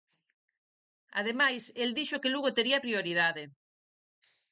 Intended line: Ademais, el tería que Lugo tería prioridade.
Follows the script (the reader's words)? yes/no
no